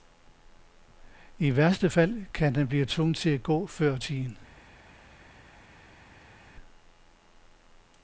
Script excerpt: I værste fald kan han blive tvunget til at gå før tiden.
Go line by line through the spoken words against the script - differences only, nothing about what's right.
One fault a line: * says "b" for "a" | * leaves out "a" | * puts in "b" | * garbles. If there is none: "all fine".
all fine